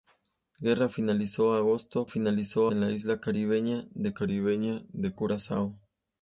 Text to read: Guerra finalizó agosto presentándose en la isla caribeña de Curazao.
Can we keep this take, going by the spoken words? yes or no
no